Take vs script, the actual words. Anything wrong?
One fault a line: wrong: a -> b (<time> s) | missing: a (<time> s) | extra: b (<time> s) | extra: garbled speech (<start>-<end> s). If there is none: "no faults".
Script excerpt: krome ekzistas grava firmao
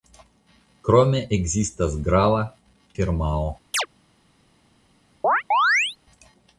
no faults